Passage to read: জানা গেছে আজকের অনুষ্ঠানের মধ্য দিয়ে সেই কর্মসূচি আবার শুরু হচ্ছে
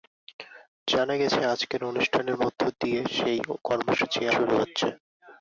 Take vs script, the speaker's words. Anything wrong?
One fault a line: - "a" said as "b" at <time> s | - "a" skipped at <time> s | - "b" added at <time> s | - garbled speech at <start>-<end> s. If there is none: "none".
- "আবার" skipped at 4.2 s